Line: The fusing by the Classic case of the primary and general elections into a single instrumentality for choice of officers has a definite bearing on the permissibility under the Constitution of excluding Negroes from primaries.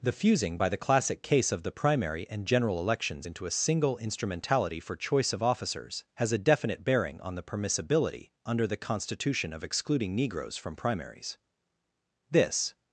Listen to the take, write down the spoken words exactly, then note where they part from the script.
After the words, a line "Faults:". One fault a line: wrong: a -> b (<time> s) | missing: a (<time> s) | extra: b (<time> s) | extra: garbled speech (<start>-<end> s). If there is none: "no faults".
The fusing by the Classic case of the primary and general elections into a single instrumentality for choice of officers has a definite bearing on the permissibility under the Constitution of excluding Negroes from primaries. This
Faults:
extra: This (12.3 s)